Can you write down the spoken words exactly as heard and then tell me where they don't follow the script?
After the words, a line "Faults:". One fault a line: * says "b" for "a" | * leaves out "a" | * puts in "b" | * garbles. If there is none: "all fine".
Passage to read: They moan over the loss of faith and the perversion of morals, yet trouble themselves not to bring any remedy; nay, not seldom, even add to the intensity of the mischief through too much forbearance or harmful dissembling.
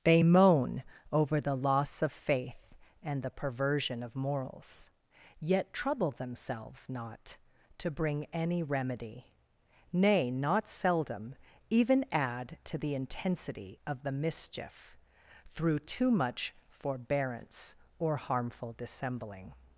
They moan over the loss of faith and the perversion of morals, yet trouble themselves not to bring any remedy; nay, not seldom, even add to the intensity of the mischief through too much forbearance or harmful dissembling.
Faults:
all fine